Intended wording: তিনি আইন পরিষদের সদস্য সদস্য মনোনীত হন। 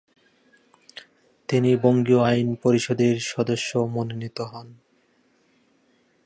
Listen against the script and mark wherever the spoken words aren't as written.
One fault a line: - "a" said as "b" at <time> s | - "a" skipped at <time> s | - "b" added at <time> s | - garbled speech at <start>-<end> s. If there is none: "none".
- "বঙ্গীয়" added at 1.8 s
- "সদস্য" skipped at 3.8 s